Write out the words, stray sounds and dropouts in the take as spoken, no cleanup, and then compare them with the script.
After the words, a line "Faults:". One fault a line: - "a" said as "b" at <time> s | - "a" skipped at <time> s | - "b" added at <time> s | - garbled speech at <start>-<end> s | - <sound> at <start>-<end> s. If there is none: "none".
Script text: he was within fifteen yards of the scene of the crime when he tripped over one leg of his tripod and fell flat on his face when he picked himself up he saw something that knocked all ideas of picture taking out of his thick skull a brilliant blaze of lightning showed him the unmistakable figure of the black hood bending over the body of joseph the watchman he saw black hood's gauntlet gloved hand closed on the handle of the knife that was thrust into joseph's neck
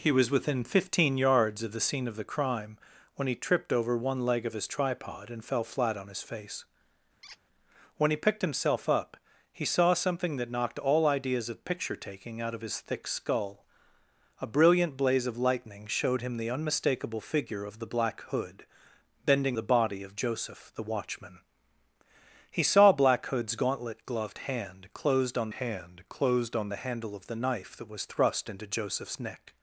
he was within fifteen yards of the scene of the crime when he tripped over one leg of his tripod and fell flat on his face when he picked himself up he saw something that knocked all ideas of picture taking out of his thick skull a brilliant blaze of lightning showed him the unmistakable figure of the black hood bending the body of joseph the watchman he saw black hood's gauntlet gloved hand closed on hand closed on the handle of the knife that was thrust into joseph's neck
Faults:
- squeak at 7.2-7.4 s
- "over" skipped at 19.6 s
- "hand closed on" added at 25.5 s